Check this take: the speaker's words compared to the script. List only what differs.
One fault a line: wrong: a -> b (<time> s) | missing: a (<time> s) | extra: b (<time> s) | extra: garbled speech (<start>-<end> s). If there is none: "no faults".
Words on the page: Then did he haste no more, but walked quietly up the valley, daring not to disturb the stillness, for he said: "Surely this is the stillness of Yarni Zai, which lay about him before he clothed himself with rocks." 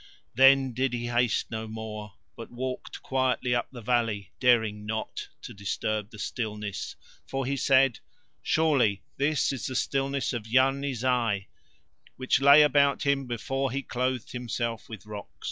no faults